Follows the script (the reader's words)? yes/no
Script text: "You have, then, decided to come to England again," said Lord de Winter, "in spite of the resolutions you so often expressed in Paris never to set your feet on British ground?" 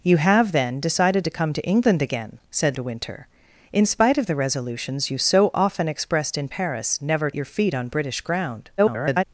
no